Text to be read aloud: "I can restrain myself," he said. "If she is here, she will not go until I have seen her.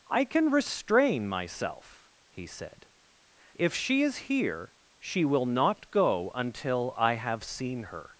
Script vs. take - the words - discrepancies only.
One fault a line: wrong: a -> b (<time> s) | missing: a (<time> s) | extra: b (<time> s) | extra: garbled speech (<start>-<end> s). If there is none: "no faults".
no faults